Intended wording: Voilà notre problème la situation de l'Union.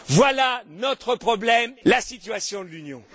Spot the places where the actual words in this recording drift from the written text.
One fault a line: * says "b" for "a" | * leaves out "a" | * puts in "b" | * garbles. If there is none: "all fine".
all fine